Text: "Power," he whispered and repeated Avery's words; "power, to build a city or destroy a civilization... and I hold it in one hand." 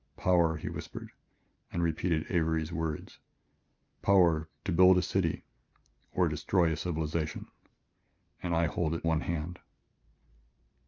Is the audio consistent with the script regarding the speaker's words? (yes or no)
no